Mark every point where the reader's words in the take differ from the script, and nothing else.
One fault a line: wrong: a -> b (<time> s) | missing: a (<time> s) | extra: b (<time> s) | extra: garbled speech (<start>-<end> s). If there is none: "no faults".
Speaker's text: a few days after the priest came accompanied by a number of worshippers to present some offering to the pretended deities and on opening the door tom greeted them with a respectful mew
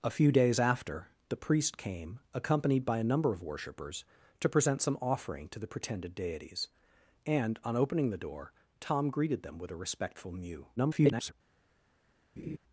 extra: garbled speech (10.8-11.3 s)